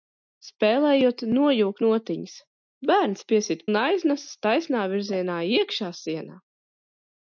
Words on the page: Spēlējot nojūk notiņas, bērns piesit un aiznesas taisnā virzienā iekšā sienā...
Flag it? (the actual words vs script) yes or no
no